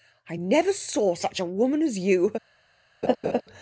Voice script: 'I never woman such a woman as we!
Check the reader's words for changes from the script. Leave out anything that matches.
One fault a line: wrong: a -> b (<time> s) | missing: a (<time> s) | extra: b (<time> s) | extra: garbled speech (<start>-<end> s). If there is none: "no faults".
wrong: woman -> saw (0.7 s)
wrong: we -> you (2.0 s)